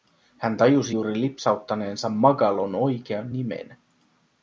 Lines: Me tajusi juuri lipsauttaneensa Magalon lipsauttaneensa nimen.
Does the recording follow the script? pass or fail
fail